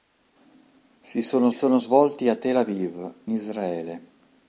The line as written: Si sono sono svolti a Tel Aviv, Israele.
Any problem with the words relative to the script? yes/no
no